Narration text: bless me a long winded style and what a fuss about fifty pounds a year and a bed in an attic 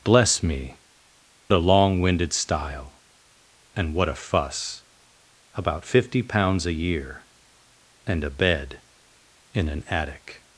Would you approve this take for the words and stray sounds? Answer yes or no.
yes